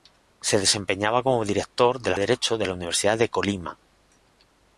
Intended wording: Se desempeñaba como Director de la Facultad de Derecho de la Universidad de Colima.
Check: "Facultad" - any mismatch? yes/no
yes